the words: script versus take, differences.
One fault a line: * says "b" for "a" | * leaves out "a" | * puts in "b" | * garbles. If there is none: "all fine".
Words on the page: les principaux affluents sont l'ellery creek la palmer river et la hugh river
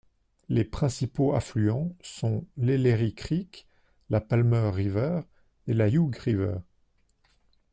all fine